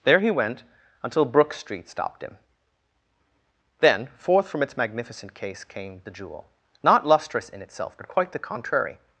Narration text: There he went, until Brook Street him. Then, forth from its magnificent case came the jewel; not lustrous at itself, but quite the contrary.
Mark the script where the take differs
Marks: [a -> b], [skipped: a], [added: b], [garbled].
There he went, until Brook Street [added: stopped] him. Then, forth from its magnificent case came the jewel; not lustrous [at -> in] itself, but quite the contrary.